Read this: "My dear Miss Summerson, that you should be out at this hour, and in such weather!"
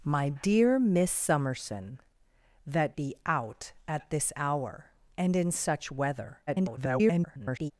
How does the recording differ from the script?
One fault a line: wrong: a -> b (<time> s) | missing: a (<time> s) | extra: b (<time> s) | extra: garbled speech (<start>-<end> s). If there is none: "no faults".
missing: you should (3.0 s)
extra: garbled speech (6.5-7.7 s)